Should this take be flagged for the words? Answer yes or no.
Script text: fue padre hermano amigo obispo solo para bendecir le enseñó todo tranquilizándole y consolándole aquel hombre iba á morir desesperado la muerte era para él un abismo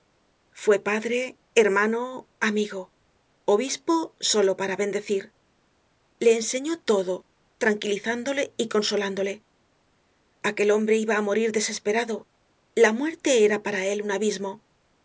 no